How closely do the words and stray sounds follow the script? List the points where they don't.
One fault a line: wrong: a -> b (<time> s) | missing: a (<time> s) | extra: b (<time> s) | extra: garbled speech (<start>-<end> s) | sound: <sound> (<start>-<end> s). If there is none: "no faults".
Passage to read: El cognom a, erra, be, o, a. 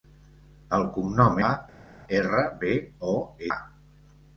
no faults